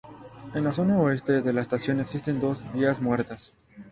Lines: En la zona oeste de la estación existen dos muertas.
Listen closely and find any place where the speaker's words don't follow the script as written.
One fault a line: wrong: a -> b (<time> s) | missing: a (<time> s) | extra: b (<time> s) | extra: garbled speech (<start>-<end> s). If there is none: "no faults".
extra: vías (2.7 s)